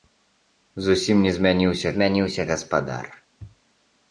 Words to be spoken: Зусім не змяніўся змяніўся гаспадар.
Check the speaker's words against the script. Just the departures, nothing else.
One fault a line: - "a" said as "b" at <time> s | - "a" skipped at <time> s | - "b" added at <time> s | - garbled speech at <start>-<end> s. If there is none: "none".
none